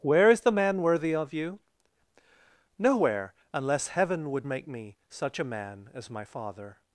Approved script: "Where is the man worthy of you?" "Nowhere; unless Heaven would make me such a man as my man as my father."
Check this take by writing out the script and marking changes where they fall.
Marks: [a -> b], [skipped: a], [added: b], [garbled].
"Where is the man worthy of you?" "Nowhere; unless Heaven would make me such a man as my [skipped: man as my] father."